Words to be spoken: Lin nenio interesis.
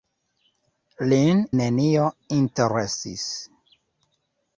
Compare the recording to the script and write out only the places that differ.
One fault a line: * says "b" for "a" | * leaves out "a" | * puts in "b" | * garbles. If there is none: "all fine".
all fine